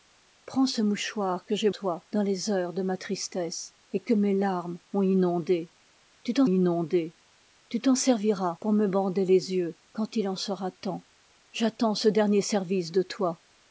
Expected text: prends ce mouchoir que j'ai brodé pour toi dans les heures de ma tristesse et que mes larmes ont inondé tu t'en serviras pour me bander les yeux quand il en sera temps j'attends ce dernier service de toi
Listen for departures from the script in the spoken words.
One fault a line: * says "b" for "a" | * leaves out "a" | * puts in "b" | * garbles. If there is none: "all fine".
* leaves out "brodé pour"
* puts in "inondé tu t'en"